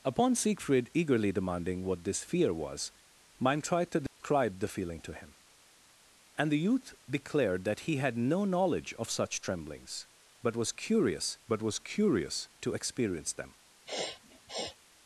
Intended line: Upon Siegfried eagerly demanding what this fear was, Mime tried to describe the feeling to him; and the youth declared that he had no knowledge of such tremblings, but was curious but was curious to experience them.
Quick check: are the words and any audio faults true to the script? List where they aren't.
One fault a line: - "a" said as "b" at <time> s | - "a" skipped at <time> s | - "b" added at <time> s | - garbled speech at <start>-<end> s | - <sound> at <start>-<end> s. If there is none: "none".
- dropout at 4.1-4.2 s
- sniff at 13.9-14.8 s